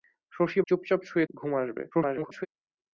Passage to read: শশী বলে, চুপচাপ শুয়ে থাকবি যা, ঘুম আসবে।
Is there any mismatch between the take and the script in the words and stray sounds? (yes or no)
yes